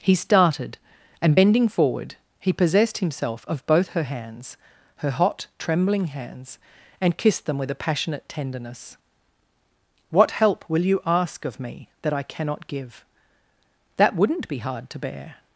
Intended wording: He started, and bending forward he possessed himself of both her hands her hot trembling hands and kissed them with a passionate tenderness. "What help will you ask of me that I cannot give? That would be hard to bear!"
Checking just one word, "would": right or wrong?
wrong